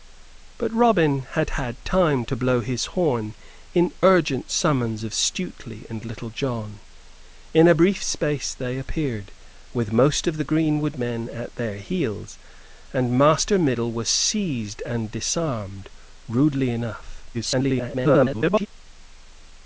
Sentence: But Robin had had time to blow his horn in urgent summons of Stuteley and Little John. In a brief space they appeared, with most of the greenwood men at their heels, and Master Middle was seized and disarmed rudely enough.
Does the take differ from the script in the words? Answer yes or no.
yes